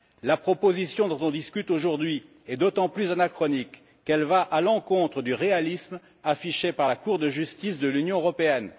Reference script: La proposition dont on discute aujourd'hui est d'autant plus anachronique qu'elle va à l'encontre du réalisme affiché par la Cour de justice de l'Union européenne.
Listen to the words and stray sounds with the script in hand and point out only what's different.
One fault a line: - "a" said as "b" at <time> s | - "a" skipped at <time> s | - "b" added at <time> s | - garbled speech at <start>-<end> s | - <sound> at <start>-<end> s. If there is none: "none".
none